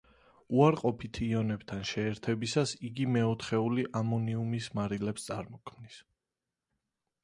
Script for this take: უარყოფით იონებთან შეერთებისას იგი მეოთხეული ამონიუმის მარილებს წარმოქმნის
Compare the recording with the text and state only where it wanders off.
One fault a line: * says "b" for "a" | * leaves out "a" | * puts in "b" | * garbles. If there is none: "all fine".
all fine